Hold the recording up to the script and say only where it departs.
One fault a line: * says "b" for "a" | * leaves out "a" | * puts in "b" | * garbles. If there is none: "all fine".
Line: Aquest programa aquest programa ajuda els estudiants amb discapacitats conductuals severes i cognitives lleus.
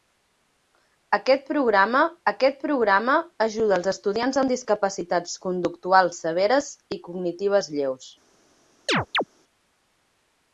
all fine